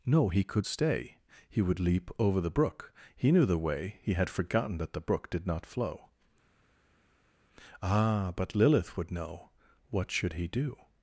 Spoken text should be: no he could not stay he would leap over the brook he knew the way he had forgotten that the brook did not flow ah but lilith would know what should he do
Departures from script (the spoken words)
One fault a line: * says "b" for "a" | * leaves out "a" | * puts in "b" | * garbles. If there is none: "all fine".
* leaves out "not"